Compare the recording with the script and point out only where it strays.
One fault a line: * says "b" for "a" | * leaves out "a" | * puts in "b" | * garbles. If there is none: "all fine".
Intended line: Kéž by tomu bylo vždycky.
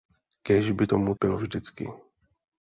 all fine